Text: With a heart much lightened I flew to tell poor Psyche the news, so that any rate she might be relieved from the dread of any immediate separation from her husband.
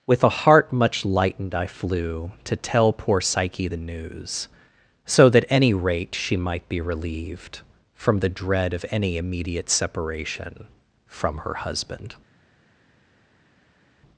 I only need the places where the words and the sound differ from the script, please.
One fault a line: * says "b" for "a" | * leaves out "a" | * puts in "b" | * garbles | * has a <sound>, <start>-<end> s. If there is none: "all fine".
all fine